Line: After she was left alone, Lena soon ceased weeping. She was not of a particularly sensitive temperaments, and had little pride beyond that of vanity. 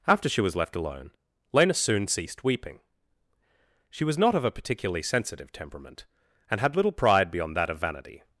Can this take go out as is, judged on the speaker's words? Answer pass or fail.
fail